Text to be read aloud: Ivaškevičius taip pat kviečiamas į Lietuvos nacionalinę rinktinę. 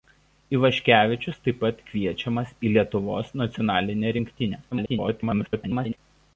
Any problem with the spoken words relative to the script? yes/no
yes